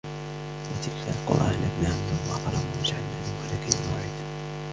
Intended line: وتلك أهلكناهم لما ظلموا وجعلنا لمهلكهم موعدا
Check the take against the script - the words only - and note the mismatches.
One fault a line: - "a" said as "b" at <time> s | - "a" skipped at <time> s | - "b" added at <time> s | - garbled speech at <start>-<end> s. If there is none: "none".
- "القرى" added at 1.1 s